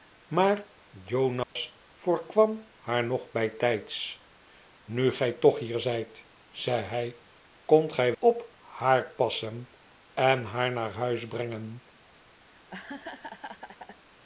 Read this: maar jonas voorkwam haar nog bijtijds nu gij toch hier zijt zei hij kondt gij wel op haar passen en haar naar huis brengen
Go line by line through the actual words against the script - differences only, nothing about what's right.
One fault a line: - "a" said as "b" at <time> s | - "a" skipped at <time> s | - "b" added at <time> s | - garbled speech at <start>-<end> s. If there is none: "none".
- "wel" skipped at 8.1 s